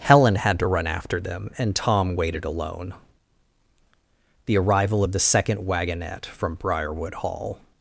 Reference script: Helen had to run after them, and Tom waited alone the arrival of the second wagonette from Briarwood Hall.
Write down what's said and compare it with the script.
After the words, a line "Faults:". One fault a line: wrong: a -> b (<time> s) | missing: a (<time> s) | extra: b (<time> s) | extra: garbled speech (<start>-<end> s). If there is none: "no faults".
Helen had to run after them, and Tom waited alone the arrival of the second wagonette from Briarwood Hall.
Faults:
no faults